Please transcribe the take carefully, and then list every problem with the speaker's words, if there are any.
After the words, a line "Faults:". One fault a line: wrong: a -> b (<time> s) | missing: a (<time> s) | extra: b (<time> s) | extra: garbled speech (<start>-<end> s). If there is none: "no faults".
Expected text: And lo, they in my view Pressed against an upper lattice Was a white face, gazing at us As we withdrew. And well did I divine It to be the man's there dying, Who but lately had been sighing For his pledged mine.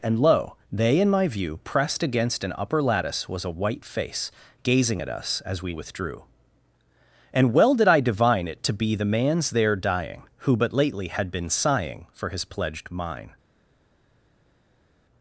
And lo, they in my view Pressed against an upper lattice Was a white face, gazing at us As we withdrew. And well did I divine It to be the man's there dying, Who but lately had been sighing For his pledged mine.
Faults:
no faults